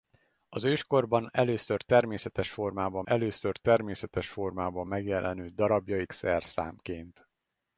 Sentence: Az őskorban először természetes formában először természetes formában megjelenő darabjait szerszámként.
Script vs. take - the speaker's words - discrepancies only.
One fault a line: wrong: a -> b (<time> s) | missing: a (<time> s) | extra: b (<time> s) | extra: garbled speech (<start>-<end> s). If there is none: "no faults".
no faults